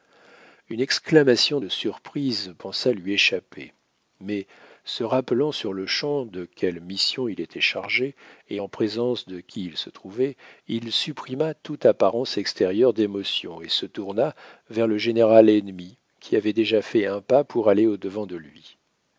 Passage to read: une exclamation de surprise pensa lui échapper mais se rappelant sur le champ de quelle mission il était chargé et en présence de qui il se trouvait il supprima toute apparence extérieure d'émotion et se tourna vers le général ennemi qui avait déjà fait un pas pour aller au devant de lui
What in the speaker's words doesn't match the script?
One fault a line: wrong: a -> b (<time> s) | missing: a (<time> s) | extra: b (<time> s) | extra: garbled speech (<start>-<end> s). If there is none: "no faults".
no faults